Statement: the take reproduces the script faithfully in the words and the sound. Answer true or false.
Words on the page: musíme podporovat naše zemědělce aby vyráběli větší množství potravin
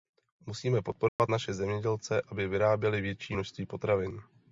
false